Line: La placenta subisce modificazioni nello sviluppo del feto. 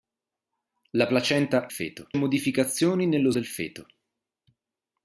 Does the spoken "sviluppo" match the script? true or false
false